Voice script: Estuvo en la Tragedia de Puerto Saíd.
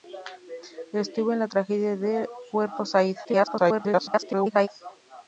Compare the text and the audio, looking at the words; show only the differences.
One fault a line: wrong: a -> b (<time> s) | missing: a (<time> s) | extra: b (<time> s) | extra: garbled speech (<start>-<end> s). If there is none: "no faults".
extra: garbled speech (3.2-4.7 s)